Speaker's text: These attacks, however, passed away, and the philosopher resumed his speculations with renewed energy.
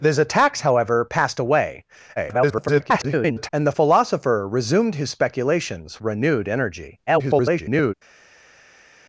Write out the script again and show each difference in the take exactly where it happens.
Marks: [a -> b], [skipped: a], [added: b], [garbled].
These attacks, however, passed away, [garbled] and the philosopher resumed his speculations [skipped: with] renewed energy. [garbled]